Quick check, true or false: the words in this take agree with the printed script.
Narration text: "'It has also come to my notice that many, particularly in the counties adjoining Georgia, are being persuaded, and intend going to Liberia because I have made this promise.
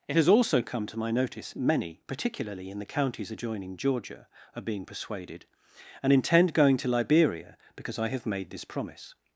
false